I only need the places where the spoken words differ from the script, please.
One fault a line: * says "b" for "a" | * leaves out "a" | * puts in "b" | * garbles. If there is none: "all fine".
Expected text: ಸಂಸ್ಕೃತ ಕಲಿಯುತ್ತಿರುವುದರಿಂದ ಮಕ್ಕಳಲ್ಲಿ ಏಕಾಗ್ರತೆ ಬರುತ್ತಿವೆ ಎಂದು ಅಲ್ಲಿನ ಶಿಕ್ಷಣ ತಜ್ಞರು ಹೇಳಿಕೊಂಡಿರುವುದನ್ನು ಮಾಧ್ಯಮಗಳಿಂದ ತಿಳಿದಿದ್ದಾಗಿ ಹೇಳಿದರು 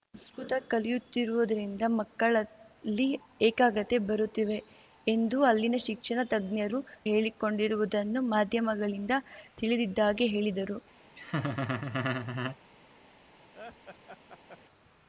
all fine